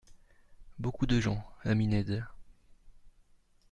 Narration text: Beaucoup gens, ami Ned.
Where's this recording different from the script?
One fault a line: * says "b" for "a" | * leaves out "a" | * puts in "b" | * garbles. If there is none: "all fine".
* puts in "de"